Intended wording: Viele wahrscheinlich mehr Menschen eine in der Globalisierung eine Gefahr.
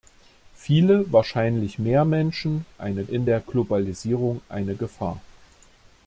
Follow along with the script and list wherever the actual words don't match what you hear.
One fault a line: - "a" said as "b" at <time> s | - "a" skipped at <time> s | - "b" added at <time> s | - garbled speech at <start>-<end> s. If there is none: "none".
none